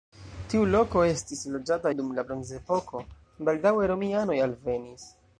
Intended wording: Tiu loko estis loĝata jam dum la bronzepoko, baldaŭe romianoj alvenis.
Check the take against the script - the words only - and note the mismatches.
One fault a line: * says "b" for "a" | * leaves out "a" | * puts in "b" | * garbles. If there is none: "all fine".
* leaves out "jam"